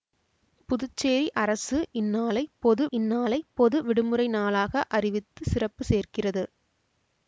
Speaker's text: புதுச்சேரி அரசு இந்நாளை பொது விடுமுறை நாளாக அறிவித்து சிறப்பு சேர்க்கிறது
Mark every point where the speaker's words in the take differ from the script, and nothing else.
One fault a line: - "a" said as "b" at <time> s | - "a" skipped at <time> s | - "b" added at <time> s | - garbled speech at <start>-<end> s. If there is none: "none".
- "இந்நாளை பொது" added at 2.9 s